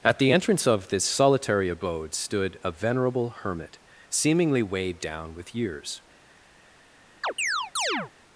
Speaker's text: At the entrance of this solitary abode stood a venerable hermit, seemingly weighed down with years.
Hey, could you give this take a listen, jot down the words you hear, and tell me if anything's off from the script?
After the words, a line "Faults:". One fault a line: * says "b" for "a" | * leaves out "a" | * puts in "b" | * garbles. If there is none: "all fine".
At the entrance of this solitary abode stood a venerable hermit, seemingly weighed down with years.
Faults:
all fine